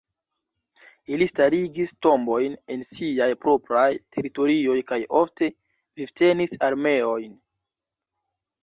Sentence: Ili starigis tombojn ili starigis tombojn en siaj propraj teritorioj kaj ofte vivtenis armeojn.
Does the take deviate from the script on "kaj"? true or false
false